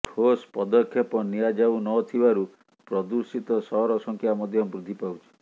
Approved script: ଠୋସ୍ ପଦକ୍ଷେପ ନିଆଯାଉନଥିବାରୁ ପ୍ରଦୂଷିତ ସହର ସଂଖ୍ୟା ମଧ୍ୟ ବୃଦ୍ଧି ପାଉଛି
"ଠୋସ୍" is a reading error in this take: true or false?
false